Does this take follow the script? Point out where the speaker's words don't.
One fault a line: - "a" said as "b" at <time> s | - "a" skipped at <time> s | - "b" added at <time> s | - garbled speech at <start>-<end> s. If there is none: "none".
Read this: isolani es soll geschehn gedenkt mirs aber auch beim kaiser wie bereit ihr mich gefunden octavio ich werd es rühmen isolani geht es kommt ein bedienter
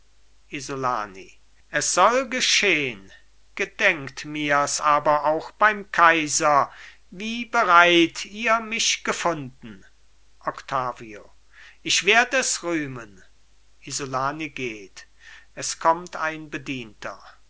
none